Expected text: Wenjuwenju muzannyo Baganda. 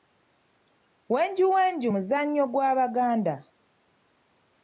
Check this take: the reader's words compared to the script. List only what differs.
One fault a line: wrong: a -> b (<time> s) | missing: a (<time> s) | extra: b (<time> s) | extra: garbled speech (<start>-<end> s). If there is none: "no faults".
extra: gwa (2.5 s)